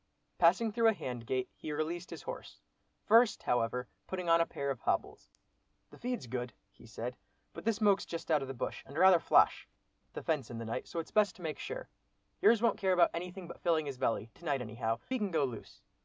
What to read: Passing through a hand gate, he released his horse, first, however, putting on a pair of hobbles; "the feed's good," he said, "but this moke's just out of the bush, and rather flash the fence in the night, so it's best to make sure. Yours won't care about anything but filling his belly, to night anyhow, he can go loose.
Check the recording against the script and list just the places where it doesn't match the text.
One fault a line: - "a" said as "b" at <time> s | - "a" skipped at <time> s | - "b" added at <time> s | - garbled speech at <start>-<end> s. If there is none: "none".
none